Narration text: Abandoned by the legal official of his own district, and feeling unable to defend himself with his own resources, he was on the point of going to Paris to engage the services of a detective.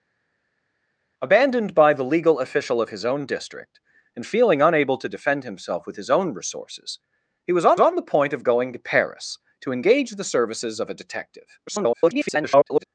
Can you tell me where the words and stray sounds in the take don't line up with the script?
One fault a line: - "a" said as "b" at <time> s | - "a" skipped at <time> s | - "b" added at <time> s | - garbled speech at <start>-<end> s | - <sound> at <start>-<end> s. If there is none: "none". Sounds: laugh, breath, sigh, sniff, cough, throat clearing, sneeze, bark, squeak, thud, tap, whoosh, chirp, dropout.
- "on" added at 7.8 s
- garbled speech at 11.7-12.8 s